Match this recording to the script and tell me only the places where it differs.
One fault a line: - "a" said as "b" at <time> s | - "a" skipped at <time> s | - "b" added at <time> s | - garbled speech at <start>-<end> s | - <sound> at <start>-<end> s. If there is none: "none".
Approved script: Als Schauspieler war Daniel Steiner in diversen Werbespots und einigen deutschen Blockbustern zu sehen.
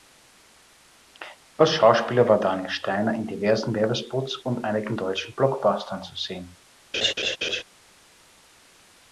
- laugh at 6.9-7.6 s